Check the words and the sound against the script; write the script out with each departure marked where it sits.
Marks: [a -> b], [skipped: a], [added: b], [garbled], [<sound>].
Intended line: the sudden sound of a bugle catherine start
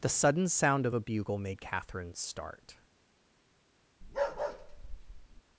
the sudden sound of a bugle [added: made] catherine start [bark]